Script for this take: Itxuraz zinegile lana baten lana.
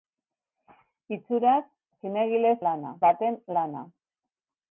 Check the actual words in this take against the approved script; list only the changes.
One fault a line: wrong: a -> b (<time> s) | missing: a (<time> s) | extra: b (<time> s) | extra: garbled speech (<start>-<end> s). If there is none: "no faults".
no faults